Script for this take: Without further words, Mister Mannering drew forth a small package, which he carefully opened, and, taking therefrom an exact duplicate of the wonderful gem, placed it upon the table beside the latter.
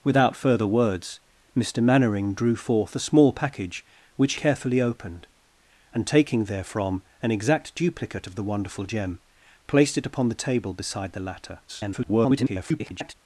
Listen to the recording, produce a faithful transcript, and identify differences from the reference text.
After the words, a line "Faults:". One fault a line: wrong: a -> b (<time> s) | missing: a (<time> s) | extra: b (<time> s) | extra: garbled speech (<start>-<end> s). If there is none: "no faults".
Without further words, Mister Mannering drew forth a small package, which carefully opened, and, taking therefrom an exact duplicate of the wonderful gem, placed it upon the table beside the latter. [garbled]
Faults:
missing: he (4.3 s)
extra: garbled speech (11.7-13.1 s)